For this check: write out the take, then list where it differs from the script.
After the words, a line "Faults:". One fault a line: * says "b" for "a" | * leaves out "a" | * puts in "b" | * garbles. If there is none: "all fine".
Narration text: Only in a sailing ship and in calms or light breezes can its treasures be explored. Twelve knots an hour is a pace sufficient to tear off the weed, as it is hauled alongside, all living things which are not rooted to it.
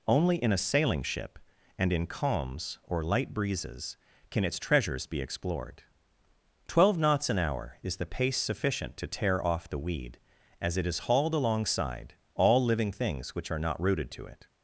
Only in a sailing ship and in calms or light breezes can its treasures be explored. Twelve knots an hour is the pace sufficient to tear off the weed, as it is hauled alongside, all living things which are not rooted to it.
Faults:
* says "the" for "a"